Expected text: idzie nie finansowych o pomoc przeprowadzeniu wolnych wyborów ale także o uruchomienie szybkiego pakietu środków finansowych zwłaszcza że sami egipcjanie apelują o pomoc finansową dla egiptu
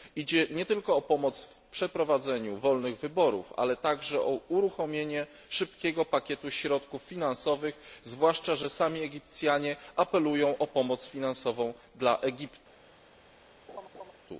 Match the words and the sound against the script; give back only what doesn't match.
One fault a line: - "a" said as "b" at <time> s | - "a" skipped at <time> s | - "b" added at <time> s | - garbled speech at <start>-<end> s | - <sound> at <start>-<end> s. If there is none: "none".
- "finansowych" said as "tylko" at 0.6 s
- "w" added at 1.4 s
- laugh at 13.7-14.1 s